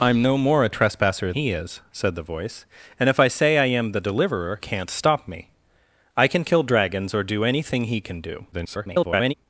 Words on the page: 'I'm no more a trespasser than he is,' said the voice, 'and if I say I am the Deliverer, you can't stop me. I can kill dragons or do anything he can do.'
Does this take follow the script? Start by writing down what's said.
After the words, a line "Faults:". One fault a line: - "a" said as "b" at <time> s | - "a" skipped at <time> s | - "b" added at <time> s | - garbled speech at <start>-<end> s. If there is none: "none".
'I'm no more a trespasser he is,' said the voice, 'and if I say I am the Deliverer, can't stop me. I can kill dragons or do anything he can do.' [garbled]
Faults:
- "than" skipped at 1.3 s
- "you" skipped at 4.6 s
- garbled speech at 8.5-9.3 s